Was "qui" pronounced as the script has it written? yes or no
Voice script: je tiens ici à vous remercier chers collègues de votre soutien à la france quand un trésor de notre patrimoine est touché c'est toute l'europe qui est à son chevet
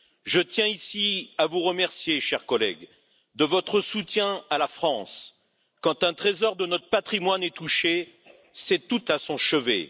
no